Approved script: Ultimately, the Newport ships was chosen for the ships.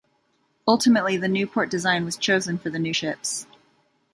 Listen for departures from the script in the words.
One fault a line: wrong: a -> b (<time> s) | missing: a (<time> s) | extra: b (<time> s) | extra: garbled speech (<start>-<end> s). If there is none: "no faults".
wrong: ships -> design (1.7 s)
extra: new (2.8 s)